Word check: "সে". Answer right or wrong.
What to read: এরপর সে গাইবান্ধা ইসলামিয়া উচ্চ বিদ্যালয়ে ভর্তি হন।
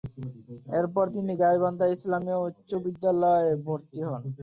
wrong